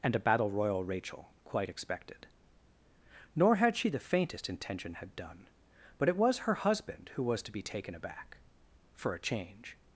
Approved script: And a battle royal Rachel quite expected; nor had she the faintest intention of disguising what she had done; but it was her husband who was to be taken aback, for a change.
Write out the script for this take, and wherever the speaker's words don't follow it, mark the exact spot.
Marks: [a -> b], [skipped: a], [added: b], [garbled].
And a battle royal Rachel quite expected; nor had she the faintest intention [skipped: of disguising what she] had done; but it was her husband who was to be taken aback, for a change.